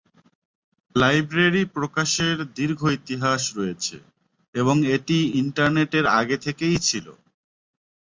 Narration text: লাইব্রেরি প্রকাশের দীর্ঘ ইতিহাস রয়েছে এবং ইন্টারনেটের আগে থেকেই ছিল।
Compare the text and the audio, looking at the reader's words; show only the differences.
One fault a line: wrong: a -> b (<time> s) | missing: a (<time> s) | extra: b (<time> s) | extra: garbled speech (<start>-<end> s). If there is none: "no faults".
extra: এটি (5.0 s)